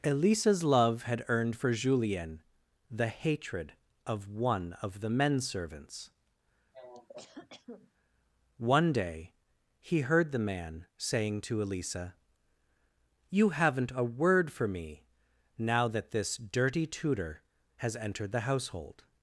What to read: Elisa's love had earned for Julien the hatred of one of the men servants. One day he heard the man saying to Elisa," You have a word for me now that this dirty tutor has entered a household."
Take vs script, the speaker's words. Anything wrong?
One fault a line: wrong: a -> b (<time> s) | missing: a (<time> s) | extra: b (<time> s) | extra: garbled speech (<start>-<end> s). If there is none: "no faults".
wrong: have -> haven't (13.5 s)
wrong: a -> the (18.3 s)